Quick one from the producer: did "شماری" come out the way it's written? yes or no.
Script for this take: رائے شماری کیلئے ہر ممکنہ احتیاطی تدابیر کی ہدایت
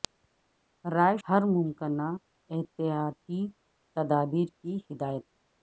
no